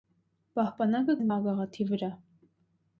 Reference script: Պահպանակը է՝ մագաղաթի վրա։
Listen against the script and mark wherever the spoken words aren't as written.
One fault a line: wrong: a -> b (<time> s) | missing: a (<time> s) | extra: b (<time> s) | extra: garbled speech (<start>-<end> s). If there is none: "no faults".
no faults